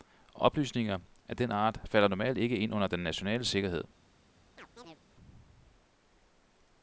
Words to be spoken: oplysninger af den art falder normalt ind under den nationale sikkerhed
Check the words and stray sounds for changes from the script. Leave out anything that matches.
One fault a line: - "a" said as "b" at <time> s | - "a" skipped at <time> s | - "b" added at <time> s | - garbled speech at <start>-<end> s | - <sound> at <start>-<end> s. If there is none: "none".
- "ikke" added at 2.4 s
- chirp at 4.6-5.0 s